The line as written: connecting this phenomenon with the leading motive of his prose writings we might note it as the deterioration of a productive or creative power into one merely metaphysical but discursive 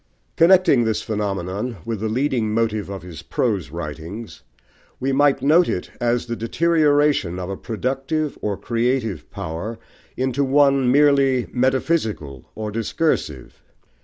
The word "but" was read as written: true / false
false